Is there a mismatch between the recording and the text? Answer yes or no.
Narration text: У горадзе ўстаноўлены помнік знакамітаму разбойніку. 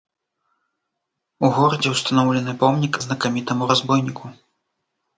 no